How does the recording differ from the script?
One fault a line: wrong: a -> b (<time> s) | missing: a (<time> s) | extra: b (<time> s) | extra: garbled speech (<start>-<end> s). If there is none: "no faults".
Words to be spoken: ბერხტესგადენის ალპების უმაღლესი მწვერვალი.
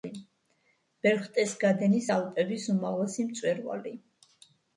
no faults